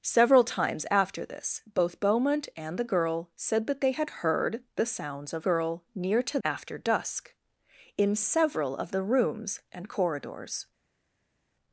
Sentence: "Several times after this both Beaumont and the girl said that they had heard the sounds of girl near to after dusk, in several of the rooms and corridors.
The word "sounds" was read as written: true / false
true